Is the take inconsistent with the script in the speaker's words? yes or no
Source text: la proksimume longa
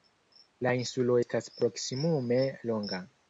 yes